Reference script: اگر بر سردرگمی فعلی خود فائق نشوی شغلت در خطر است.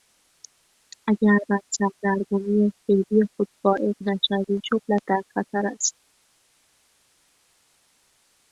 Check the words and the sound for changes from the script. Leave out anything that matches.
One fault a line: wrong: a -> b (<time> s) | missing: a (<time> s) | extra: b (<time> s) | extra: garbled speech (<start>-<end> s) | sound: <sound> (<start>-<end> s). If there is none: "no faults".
no faults